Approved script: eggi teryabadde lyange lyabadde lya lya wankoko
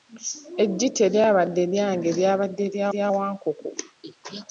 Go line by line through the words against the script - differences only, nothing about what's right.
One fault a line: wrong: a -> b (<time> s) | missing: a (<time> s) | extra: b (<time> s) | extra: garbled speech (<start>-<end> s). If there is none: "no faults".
no faults